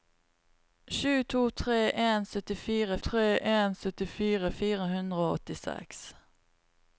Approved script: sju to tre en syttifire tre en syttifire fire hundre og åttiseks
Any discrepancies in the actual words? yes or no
no